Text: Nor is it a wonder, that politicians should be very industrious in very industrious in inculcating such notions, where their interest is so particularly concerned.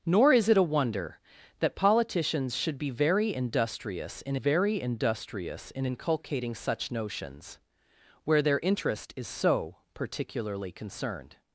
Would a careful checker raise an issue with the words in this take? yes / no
no